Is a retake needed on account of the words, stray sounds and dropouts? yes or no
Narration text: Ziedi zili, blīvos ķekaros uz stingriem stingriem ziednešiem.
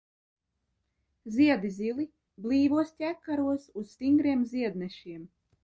yes